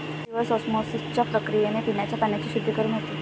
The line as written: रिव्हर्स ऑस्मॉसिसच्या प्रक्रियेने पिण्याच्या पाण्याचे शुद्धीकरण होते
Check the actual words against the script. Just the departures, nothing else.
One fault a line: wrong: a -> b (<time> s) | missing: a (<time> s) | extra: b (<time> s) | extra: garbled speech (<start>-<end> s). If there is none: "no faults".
no faults